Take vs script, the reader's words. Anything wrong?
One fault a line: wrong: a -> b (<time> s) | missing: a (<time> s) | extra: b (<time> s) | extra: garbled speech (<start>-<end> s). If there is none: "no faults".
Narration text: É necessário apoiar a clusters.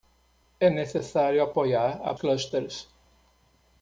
no faults